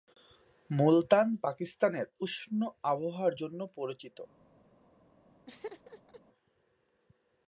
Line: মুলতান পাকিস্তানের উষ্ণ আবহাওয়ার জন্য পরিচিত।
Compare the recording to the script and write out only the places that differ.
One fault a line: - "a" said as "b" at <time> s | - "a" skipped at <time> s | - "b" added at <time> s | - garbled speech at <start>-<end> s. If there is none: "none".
none